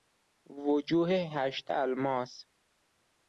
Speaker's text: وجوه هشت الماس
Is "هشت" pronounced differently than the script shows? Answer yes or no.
no